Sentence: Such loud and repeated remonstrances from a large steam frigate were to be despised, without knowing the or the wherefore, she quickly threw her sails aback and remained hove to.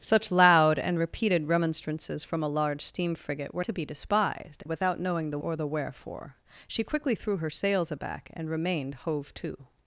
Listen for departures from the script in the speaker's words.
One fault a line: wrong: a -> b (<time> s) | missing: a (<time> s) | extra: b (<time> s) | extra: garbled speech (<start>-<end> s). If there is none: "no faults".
no faults